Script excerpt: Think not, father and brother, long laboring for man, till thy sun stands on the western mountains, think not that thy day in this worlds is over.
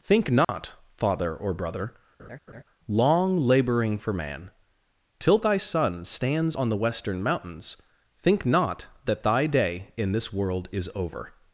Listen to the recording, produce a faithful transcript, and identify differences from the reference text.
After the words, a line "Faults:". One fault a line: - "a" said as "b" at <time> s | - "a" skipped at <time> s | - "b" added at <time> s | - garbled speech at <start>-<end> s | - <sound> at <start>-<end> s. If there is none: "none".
Think not, father or brother, long laboring for man, till thy sun stands on the western mountains, think not that thy day in this world is over.
Faults:
- dropout at 0.4-0.5 s
- "and" said as "or" at 1.4 s
- laugh at 2.2-2.6 s
- "worlds" said as "world" at 10.3 s